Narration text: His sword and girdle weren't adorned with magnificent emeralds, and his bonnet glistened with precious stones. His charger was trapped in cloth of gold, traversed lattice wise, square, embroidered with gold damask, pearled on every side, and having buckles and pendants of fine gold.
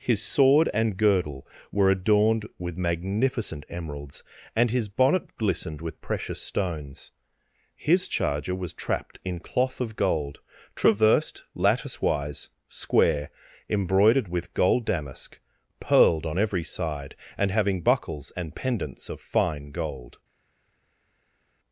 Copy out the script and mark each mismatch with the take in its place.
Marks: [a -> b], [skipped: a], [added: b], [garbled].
His sword and girdle [weren't -> were] adorned with magnificent emeralds, and his bonnet glistened with precious stones. His charger was trapped in cloth of gold, traversed lattice wise, square, embroidered with gold damask, pearled on every side, and having buckles and pendants of fine gold.